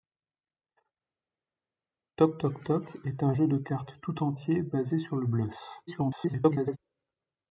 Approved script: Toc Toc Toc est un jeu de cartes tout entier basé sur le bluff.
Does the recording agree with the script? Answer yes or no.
no